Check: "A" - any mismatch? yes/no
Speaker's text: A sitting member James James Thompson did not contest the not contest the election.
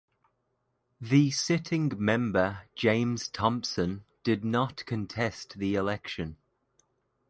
yes